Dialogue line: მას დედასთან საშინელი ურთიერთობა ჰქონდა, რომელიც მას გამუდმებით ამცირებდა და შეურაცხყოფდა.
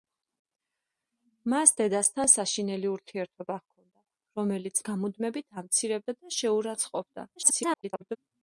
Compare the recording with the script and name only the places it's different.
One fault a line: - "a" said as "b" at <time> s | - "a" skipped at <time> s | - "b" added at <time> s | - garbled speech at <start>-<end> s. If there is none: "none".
- "მას" skipped at 4.8 s
- garbled speech at 7.4-8.2 s